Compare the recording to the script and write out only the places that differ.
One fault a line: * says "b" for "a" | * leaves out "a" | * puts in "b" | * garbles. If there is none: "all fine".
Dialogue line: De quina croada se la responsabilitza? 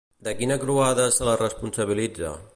all fine